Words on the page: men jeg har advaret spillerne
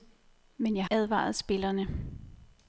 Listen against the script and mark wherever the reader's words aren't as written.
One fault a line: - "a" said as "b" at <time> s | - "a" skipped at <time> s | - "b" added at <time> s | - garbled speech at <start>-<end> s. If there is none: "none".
- "har" skipped at 0.8 s